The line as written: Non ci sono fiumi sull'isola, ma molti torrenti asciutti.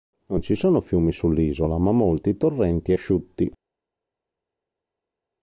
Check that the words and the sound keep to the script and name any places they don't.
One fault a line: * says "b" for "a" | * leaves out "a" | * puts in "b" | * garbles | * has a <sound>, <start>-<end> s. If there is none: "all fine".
all fine